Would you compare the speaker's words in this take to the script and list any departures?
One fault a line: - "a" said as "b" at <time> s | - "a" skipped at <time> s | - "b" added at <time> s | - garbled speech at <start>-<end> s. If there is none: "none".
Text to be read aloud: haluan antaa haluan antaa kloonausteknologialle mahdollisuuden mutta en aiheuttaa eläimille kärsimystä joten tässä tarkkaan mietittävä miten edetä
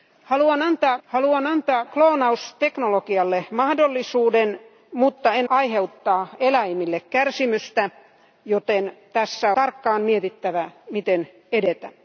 none